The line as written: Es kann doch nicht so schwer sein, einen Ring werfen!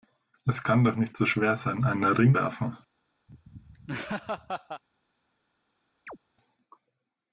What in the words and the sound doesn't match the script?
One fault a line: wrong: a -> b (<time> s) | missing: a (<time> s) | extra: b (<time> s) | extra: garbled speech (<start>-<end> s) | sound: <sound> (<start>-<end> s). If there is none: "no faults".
sound: laugh (3.3-4.8 s)
sound: chirp (6.1-6.2 s)